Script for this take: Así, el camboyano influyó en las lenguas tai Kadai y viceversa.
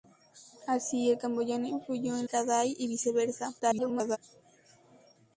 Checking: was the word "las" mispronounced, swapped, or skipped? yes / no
yes